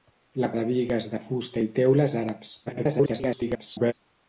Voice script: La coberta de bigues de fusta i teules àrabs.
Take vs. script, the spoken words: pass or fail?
fail